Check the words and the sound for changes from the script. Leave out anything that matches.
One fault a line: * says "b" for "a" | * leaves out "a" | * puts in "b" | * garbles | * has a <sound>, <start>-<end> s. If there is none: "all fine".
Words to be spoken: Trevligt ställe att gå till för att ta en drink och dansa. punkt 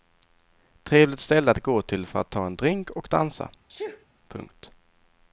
* has a sneeze, 3.7-4.1 s